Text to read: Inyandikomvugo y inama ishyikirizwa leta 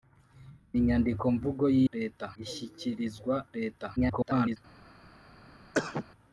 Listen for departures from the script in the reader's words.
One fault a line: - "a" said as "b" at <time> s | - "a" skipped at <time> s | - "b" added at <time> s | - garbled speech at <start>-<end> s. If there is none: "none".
- "inama" said as "leta" at 1.9 s
- garbled speech at 4.0-4.6 s